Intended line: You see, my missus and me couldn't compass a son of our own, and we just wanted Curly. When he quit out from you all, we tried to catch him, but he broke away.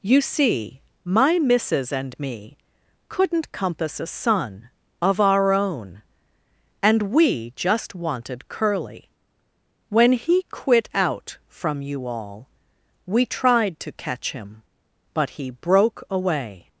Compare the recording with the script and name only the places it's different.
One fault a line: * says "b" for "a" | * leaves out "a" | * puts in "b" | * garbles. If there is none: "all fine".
all fine